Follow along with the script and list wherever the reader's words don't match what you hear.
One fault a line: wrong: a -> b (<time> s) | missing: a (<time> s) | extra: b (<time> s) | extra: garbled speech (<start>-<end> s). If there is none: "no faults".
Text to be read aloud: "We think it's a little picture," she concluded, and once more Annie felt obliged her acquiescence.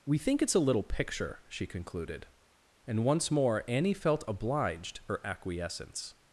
no faults